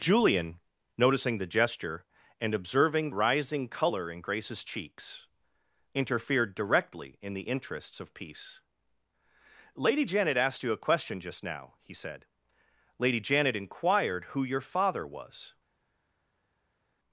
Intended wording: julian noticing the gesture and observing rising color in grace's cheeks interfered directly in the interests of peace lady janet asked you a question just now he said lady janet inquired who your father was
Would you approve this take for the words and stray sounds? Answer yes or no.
yes